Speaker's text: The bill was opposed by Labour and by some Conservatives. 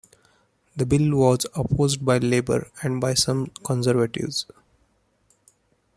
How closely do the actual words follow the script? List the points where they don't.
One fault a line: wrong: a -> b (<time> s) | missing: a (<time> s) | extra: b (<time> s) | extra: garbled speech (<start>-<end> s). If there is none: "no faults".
no faults